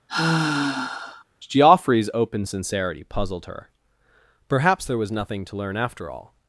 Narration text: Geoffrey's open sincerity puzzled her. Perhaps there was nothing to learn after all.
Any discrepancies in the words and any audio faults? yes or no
yes